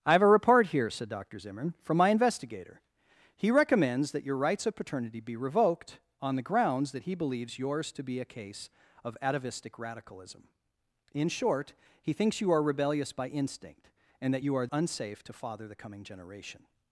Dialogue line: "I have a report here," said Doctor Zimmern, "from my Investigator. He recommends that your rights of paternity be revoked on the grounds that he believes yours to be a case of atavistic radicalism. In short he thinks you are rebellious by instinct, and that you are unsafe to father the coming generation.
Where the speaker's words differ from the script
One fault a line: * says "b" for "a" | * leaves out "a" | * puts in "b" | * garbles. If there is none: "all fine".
all fine